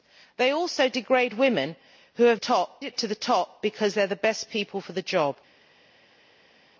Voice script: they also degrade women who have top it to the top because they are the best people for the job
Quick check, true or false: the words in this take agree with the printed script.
true